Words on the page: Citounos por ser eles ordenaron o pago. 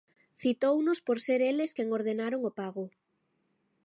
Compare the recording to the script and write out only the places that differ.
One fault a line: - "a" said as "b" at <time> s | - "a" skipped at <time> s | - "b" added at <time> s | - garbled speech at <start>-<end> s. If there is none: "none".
- "quen" added at 1.7 s